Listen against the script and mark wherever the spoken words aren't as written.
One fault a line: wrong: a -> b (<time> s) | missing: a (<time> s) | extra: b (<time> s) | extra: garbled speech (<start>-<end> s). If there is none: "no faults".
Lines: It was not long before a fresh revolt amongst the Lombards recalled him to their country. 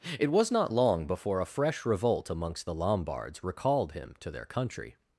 no faults